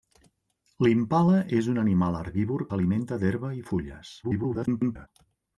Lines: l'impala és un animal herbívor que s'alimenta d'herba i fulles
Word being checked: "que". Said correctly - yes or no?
no